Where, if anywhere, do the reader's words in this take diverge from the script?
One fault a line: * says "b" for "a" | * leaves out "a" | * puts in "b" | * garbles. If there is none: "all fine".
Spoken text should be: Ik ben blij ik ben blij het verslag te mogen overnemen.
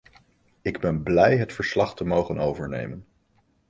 * leaves out "ik ben blij"